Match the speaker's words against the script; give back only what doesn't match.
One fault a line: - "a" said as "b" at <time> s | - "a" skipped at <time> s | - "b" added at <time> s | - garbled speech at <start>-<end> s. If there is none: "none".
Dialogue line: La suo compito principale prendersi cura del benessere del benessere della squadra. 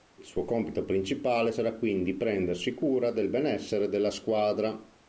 - "La" said as "Il" at 0.1 s
- "sarà quindi" added at 1.5 s
- "del benessere" skipped at 3.9 s